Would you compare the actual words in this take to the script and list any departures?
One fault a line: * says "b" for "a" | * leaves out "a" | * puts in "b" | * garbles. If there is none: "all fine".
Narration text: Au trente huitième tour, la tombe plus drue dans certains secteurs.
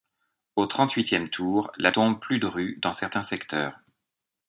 all fine